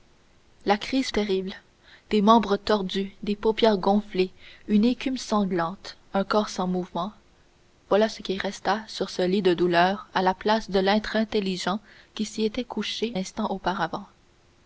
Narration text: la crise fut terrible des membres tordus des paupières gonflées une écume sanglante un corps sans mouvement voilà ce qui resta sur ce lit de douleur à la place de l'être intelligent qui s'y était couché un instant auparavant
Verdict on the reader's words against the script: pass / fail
fail